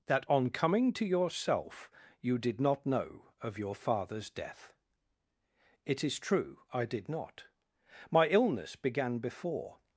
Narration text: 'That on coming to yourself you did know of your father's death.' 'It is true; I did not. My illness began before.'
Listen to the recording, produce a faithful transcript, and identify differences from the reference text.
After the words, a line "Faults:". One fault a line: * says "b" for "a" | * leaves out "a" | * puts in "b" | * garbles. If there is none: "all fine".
'That on coming to yourself you did not know of your father's death.' 'It is true; I did not. My illness began before.'
Faults:
* puts in "not"